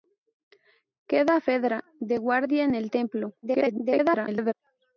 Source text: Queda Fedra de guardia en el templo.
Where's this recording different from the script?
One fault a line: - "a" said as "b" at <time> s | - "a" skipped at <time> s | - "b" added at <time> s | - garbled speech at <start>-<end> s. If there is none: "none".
- garbled speech at 3.4-4.5 s